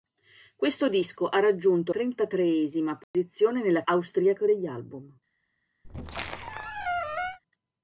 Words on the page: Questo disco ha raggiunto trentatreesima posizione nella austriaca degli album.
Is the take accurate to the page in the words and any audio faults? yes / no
no